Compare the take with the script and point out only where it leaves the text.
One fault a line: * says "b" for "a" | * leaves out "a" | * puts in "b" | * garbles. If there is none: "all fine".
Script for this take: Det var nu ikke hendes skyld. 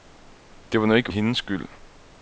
all fine